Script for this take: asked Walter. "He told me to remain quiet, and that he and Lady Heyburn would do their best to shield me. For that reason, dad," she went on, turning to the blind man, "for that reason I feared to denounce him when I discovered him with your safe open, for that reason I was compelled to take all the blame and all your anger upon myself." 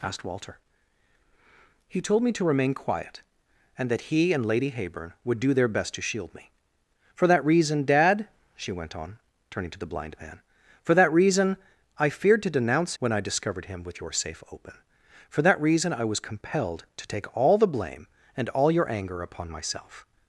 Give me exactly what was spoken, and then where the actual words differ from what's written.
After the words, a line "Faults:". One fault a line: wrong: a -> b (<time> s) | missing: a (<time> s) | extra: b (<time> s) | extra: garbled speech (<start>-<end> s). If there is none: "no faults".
asked Walter. "He told me to remain quiet, and that he and Lady Heyburn would do their best to shield me. For that reason, dad," she went on, turning to the blind man, "for that reason I feared to denounce when I discovered him with your safe open, for that reason I was compelled to take all the blame and all your anger upon myself."
Faults:
missing: him (12.9 s)